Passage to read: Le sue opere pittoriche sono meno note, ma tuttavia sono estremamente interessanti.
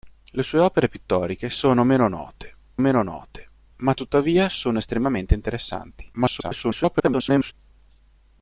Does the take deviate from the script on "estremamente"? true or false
false